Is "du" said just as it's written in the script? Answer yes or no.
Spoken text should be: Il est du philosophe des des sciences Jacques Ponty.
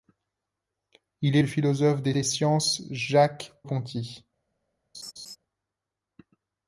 yes